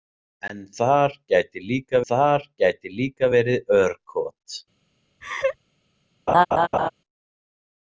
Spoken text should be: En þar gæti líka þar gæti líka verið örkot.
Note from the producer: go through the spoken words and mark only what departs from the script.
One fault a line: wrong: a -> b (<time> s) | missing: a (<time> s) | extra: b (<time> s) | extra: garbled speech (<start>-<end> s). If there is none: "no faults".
no faults